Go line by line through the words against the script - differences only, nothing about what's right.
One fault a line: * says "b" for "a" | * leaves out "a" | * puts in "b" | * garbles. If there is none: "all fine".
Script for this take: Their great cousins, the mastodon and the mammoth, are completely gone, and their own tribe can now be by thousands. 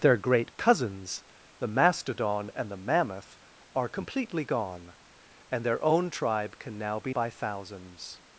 all fine